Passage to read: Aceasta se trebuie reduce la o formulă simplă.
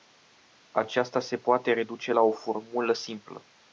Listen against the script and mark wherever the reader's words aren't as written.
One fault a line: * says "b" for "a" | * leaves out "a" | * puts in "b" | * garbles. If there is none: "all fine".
* says "poate" for "trebuie"